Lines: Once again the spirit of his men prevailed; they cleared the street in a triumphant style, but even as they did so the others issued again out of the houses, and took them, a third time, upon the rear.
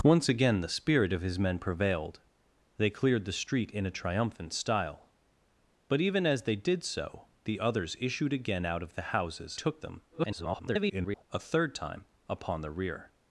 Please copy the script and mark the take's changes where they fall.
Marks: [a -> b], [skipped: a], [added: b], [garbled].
Once again the spirit of his men prevailed; they cleared the street in a triumphant style, but even as they did so the others issued again out of the houses, [skipped: and] took them, [garbled] a third time, upon the rear.